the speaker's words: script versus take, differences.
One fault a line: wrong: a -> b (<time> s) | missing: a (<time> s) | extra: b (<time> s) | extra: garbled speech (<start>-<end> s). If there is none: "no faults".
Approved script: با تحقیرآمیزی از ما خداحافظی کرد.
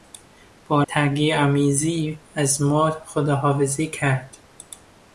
no faults